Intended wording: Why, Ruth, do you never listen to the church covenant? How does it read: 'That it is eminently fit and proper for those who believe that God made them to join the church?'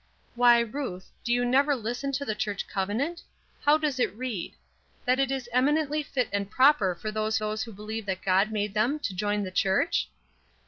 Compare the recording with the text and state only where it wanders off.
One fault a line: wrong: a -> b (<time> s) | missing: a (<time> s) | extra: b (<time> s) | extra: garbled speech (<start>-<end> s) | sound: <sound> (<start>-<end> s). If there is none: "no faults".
extra: those (7.4 s)